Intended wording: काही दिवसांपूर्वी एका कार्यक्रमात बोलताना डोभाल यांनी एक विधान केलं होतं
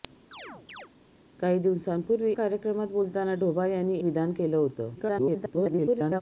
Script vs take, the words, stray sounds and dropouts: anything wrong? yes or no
yes